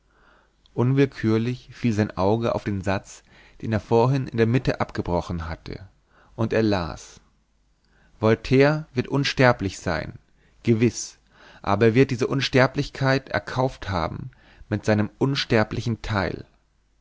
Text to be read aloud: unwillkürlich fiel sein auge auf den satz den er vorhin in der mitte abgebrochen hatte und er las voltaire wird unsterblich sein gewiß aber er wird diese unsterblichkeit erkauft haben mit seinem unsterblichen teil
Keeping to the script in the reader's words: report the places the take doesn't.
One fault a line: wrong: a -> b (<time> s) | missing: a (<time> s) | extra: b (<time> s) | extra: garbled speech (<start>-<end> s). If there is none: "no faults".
no faults